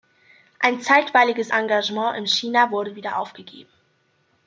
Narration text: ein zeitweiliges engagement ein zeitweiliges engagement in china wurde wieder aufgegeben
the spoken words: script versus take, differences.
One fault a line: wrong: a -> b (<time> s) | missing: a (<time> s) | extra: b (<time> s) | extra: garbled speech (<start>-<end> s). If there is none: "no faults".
missing: ein zeitweiliges engagement (2.2 s)